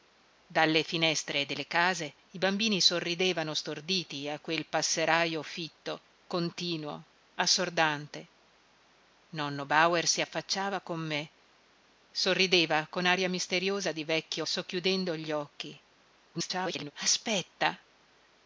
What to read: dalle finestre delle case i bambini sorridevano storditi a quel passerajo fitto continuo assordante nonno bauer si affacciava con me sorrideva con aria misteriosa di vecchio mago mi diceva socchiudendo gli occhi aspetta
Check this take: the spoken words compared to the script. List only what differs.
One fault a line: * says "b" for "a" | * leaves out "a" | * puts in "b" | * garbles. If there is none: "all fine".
* leaves out "mago mi diceva"
* garbles